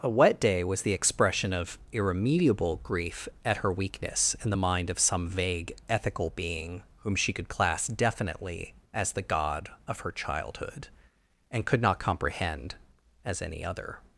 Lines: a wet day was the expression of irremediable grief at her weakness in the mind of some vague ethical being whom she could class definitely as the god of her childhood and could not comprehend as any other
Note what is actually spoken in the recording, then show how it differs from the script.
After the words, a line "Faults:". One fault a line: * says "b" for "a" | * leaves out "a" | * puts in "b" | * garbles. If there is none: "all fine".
a wet day was the expression of irremediable grief at her weakness in the mind of some vague ethical being whom she could class definitely as the god of her childhood and could not comprehend as any other
Faults:
all fine